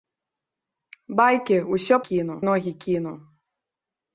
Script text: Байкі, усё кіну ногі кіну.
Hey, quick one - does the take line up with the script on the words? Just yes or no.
yes